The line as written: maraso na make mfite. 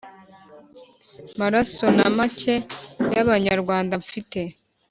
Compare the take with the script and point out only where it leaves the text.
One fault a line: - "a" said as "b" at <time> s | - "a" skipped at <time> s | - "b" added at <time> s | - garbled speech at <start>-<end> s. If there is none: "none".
- "y'abanyarwanda" added at 3.1 s